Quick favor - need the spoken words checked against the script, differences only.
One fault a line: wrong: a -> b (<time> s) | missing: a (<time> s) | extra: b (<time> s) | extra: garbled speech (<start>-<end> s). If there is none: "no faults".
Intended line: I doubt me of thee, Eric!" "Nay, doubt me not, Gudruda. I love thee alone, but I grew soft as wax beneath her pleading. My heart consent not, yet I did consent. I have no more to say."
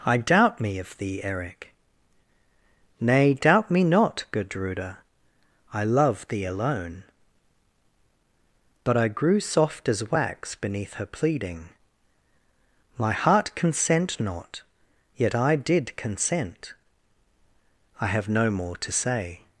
no faults